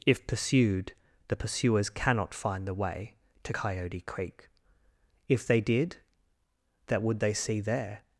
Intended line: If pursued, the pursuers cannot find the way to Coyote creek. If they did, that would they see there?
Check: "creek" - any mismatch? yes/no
no